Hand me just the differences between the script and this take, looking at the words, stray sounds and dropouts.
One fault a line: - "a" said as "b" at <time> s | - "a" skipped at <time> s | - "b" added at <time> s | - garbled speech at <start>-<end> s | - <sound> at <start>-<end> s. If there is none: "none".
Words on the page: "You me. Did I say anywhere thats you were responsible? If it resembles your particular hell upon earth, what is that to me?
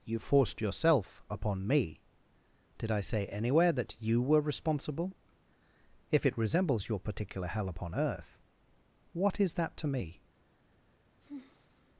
- "forced yourself upon" added at 0.2 s
- "thats" said as "that" at 3.7 s
- sigh at 11.2-11.9 s